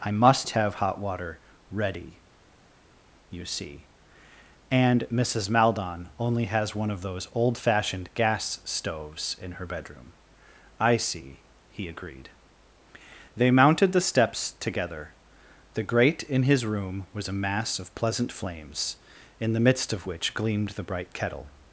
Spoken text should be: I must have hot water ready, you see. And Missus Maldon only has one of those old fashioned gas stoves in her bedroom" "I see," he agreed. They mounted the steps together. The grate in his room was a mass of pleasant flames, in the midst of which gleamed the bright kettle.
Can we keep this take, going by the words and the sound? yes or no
yes